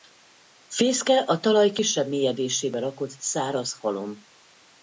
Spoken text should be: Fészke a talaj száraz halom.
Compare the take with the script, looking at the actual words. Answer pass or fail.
fail